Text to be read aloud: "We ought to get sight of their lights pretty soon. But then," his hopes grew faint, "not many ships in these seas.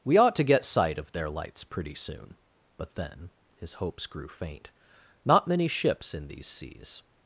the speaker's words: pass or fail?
pass